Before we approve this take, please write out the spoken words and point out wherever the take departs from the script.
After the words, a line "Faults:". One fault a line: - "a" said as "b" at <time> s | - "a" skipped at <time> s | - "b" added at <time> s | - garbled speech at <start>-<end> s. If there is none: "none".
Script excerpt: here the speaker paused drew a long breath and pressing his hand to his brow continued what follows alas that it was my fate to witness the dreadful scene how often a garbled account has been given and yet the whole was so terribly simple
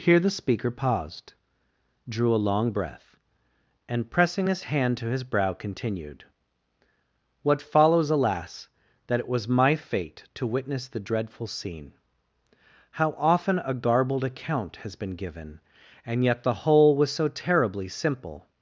here the speaker paused drew a long breath and pressing his hand to his brow continued what follows alas that it was my fate to witness the dreadful scene how often a garbled account has been given and yet the whole was so terribly simple
Faults:
none